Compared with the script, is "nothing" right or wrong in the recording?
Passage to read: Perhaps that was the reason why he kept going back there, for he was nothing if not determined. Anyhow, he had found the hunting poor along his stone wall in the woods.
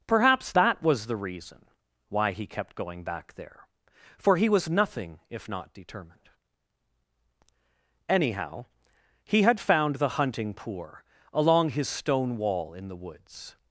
right